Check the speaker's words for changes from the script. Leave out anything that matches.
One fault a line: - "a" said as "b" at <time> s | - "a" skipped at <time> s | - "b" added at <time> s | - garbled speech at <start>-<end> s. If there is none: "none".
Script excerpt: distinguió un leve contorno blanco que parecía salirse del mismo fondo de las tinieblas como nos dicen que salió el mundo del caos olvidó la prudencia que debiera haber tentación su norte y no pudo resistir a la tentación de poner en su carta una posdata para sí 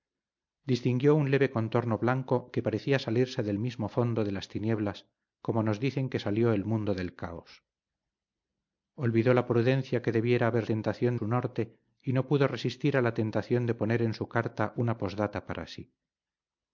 none